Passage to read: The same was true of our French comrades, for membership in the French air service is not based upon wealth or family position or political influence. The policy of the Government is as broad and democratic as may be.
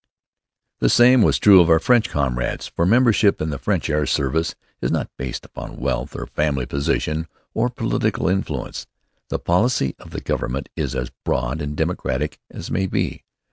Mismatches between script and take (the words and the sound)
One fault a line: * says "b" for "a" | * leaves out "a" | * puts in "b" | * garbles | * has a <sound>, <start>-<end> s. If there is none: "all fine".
all fine